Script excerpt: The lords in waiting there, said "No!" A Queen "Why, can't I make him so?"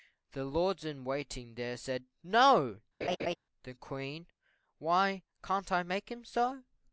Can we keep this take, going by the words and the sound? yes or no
no